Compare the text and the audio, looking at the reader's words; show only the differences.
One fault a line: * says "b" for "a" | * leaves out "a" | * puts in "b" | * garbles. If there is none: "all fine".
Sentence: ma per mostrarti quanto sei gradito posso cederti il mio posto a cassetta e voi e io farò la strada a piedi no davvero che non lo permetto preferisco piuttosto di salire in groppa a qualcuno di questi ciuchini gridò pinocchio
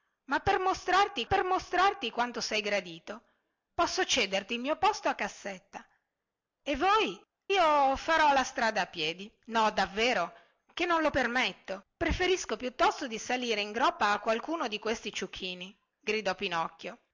* puts in "per mostrarti"
* leaves out "e"